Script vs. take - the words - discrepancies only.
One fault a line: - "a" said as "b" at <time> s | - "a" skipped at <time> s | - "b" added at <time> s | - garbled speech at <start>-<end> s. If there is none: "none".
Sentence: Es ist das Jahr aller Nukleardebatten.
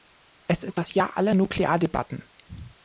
none